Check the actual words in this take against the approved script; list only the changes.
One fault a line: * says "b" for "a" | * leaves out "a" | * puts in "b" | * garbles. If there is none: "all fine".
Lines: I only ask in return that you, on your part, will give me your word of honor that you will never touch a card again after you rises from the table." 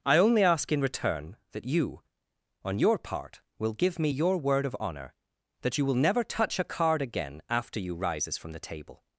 all fine